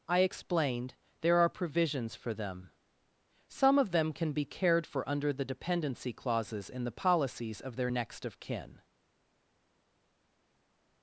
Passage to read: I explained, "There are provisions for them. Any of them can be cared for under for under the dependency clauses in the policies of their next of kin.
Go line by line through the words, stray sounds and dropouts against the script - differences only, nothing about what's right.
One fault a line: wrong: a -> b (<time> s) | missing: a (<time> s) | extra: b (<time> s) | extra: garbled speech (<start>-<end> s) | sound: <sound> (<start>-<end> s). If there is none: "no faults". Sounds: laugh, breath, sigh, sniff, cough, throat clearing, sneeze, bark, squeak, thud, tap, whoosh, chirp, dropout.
wrong: Any -> Some (3.5 s)
missing: for under (5.3 s)